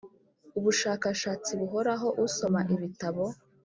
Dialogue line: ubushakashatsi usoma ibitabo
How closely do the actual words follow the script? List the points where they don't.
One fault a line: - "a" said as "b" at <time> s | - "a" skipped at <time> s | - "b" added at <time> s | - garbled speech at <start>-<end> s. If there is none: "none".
- "buhoraho" added at 1.6 s